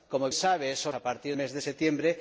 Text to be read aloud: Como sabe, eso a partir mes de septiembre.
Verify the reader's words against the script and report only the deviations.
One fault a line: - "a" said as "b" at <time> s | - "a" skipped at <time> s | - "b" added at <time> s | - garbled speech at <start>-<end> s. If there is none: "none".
none